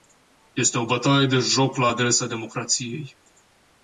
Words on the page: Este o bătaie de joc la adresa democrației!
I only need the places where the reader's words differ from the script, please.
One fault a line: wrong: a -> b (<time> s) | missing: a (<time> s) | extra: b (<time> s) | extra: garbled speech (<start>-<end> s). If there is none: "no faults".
no faults